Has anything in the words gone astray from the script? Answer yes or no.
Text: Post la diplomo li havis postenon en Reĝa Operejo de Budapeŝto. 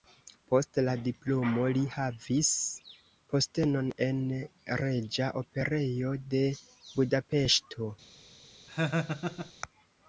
no